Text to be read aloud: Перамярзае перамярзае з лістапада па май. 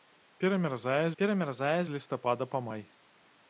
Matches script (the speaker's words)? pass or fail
pass